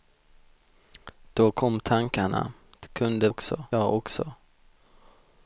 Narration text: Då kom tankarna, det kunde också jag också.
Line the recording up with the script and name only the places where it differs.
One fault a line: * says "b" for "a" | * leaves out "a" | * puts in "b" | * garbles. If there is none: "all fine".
all fine